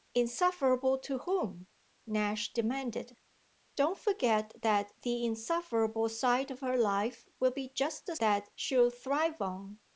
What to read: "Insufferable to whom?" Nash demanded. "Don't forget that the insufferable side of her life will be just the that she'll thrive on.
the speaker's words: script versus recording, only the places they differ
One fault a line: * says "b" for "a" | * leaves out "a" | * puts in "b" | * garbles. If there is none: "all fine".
all fine